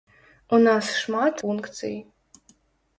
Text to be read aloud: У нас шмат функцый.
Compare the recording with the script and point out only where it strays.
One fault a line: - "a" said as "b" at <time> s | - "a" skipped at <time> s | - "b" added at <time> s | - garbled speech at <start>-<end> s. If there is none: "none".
none